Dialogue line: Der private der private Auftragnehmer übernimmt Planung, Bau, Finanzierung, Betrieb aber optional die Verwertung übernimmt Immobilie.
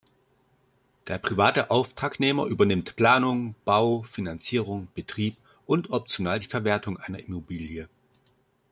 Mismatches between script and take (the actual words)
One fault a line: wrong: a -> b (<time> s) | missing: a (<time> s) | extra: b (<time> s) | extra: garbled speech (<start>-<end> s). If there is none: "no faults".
missing: der private (1.7 s)
wrong: aber -> und (5.6 s)
wrong: übernimmt -> einer (7.0 s)